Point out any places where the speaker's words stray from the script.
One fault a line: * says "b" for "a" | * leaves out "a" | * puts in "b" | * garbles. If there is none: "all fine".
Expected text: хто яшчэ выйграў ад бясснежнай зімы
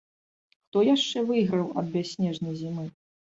all fine